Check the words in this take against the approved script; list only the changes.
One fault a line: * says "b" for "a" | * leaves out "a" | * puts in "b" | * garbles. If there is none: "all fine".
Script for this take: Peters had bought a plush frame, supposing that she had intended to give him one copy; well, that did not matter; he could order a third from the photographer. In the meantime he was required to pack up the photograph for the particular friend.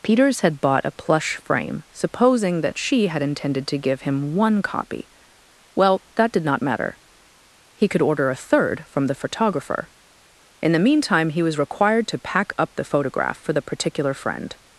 all fine